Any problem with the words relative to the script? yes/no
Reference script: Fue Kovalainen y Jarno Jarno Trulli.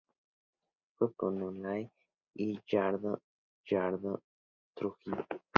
no